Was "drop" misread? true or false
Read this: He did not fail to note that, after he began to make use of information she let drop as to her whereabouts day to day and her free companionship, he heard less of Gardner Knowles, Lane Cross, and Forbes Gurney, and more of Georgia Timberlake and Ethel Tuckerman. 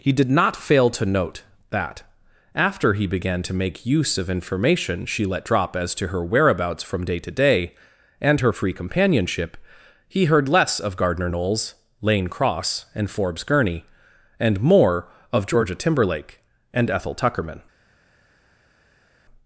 false